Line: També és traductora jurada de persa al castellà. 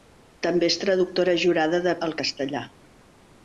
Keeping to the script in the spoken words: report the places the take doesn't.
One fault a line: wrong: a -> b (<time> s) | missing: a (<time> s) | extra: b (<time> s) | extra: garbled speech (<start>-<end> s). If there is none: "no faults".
missing: persa (1.9 s)